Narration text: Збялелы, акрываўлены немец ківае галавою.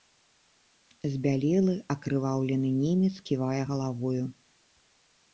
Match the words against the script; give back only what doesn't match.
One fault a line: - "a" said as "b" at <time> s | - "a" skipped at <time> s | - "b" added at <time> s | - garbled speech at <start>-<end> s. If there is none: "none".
none